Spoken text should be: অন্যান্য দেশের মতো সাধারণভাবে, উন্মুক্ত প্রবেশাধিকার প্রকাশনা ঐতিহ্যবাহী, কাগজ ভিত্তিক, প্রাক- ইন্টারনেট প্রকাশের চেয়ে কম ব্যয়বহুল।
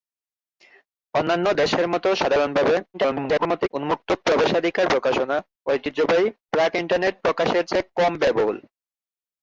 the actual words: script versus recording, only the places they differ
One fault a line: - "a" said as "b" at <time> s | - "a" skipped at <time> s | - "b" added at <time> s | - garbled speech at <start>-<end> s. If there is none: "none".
- garbled speech at 2.9-3.7 s
- "কাগজ ভিত্তিক" skipped at 6.3 s